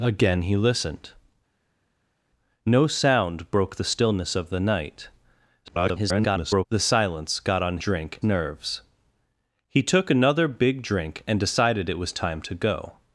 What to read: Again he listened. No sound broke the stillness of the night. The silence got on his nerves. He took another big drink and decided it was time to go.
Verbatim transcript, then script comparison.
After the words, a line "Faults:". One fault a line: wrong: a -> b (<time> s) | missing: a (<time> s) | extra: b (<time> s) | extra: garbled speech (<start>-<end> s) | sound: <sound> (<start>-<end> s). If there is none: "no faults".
Again he listened. No sound broke the stillness of the night. [garbled] The silence got on drink nerves. He took another big drink and decided it was time to go.
Faults:
extra: garbled speech (5.6-6.7 s)
wrong: his -> drink (7.8 s)